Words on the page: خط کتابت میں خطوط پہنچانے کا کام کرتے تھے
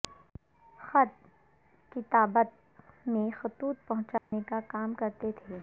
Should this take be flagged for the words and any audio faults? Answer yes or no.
yes